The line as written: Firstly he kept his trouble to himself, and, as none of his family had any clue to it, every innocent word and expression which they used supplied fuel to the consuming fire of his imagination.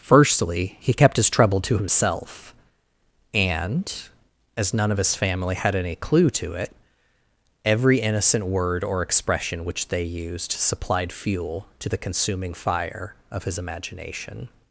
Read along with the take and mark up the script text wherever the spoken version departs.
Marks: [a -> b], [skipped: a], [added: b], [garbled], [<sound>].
Firstly he kept his trouble to himself, and, as none of his family had any clue to it, every innocent word [and -> or] expression which they used supplied fuel to the consuming fire of his imagination.